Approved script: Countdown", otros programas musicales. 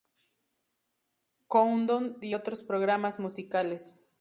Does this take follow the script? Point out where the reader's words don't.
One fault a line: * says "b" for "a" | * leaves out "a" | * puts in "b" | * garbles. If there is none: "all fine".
* puts in "y"